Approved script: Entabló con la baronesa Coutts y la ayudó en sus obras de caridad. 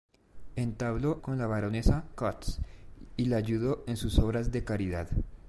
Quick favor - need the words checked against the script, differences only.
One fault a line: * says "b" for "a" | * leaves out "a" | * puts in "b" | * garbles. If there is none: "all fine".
all fine